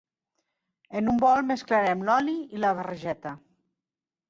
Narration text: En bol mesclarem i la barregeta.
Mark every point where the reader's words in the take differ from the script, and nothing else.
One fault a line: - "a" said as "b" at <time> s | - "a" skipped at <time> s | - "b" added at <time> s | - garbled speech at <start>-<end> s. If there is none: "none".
- "un" added at 1.1 s
- "l'oli" added at 2.1 s